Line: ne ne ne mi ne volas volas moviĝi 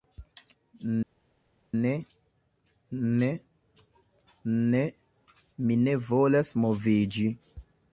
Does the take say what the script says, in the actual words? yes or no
no